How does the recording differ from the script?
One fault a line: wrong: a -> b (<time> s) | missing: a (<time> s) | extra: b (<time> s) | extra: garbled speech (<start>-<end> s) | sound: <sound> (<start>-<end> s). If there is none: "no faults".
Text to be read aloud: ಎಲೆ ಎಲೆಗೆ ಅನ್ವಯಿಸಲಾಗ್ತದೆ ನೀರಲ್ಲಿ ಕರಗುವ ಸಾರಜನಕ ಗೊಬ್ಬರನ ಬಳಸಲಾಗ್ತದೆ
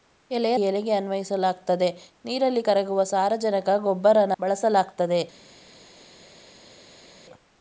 no faults